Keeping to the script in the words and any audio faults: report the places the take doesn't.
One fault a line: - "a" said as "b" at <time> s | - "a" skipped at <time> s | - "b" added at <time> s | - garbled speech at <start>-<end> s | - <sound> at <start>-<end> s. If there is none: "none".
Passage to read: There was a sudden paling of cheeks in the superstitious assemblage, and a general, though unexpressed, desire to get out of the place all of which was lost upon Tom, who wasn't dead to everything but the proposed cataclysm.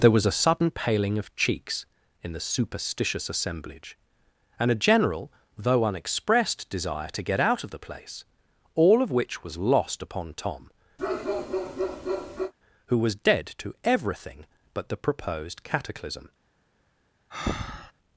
- bark at 11.0-12.5 s
- "wasn't" said as "was" at 13.0 s
- breath at 17.3-17.9 s